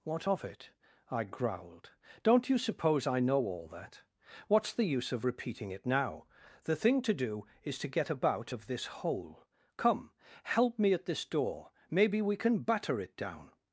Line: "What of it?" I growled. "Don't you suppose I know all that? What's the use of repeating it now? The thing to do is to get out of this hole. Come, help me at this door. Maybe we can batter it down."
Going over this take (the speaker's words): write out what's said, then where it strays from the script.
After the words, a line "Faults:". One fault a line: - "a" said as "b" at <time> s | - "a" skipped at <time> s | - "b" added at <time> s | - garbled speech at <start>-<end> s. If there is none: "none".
"What of it?" I growled. "Don't you suppose I know all that? What's the use of repeating it now? The thing to do is to get about of this hole. Come, help me at this door. Maybe we can batter it down."
Faults:
- "out" said as "about" at 8.1 s